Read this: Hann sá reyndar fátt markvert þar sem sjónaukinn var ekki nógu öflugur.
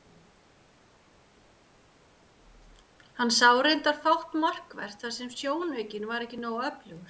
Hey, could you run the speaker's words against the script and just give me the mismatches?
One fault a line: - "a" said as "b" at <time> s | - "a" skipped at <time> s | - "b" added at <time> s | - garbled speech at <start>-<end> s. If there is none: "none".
none